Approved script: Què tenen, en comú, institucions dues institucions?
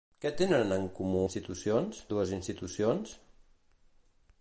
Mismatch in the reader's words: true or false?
false